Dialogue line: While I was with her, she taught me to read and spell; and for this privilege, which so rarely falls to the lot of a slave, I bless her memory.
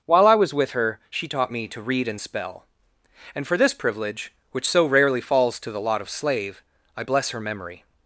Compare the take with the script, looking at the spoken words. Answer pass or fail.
fail